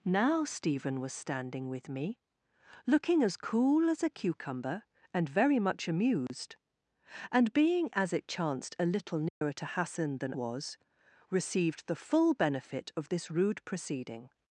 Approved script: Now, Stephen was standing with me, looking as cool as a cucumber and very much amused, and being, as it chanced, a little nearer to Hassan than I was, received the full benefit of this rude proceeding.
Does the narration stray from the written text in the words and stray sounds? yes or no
yes